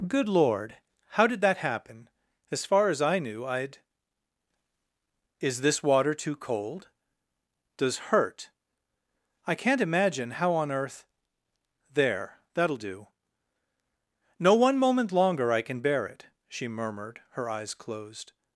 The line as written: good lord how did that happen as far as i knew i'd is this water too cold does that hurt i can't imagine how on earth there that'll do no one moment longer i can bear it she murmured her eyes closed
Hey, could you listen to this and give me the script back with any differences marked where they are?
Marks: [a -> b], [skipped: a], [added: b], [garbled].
good lord how did that happen as far as i knew i'd is this water too cold does [skipped: that] hurt i can't imagine how on earth there that'll do no one moment longer i can bear it she murmured her eyes closed